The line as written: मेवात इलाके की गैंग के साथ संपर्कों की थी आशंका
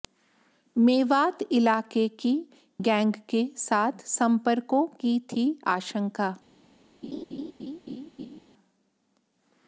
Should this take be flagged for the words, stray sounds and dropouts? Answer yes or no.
yes